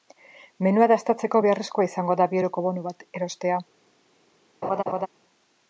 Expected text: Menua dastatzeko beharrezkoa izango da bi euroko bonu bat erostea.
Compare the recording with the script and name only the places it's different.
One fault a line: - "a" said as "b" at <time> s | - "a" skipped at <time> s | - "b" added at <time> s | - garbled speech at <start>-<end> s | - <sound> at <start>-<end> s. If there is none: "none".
- laugh at 4.6-5.1 s